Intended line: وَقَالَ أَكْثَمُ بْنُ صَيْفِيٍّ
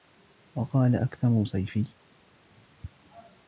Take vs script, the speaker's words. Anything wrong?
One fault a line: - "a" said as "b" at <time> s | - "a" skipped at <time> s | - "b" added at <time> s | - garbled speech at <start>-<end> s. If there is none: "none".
- "بْنُ" skipped at 1.4 s